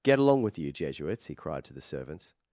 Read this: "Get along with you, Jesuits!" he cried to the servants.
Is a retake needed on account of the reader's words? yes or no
no